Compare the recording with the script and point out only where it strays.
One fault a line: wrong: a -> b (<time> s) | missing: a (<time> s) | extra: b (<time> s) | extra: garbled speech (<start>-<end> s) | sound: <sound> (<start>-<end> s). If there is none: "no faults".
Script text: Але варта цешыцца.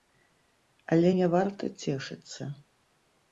extra: не (1.2 s)